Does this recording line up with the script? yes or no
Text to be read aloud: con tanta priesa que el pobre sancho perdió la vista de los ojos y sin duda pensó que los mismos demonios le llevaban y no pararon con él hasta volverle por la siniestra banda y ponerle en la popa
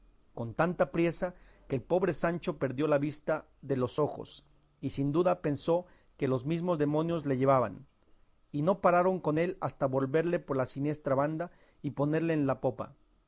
yes